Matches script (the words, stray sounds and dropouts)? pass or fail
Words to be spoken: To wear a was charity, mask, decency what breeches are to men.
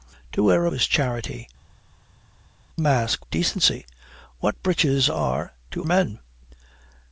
pass